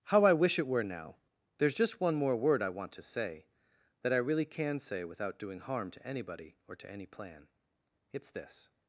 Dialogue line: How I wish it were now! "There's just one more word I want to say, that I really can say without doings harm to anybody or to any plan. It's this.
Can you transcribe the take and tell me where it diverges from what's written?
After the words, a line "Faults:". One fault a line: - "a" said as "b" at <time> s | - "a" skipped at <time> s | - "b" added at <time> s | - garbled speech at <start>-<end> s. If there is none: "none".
How I wish it were now! "There's just one more word I want to say, that I really can say without doing harm to anybody or to any plan. It's this.
Faults:
- "doings" said as "doing" at 5.4 s